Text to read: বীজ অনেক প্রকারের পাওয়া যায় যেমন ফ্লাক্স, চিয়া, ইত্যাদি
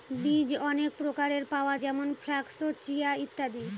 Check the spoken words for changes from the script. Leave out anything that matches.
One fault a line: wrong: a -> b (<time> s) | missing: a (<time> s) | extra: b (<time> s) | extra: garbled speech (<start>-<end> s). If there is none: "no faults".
missing: যায় (1.8 s)